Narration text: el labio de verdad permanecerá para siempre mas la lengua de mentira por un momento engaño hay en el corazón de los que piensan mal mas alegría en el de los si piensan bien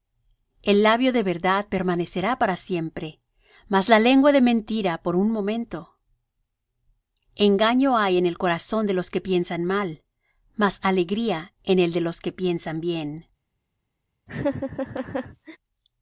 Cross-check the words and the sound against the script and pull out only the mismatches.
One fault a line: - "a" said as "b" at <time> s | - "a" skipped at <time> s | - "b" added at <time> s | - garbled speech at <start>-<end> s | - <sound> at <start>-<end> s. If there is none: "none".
- "si" said as "que" at 12.2 s
- laugh at 14.3-15.6 s